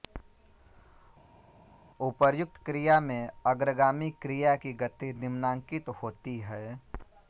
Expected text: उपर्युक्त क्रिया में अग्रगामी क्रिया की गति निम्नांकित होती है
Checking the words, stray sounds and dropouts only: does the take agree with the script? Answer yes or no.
yes